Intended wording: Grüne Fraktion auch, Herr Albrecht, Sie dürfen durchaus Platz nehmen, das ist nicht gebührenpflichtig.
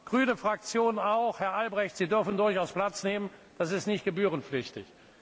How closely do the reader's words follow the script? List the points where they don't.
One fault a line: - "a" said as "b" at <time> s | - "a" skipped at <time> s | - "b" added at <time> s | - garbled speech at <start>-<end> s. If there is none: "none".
none